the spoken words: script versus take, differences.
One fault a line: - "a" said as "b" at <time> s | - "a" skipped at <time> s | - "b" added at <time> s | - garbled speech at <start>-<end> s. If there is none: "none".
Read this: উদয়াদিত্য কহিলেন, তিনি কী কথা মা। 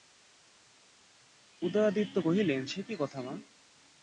- "তিনি" said as "সে" at 2.7 s